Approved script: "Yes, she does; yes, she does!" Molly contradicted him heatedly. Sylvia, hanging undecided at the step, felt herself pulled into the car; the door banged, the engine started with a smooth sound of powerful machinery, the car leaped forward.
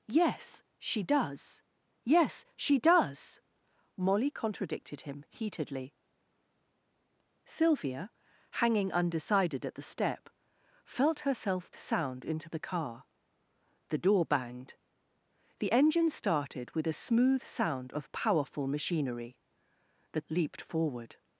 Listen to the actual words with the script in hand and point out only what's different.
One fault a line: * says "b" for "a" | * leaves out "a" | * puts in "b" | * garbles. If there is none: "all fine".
* says "sound" for "pulled"
* leaves out "car"